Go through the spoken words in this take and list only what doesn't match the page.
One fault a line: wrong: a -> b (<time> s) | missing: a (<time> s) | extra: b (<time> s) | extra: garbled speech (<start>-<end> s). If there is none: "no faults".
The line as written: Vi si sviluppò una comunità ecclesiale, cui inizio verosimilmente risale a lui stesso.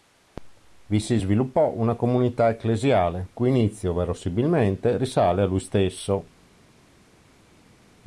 no faults